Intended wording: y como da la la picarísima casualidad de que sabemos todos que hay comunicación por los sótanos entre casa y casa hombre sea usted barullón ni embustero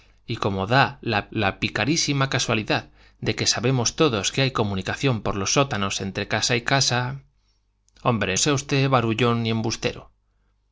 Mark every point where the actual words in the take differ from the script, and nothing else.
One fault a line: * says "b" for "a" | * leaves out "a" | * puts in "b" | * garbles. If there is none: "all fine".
all fine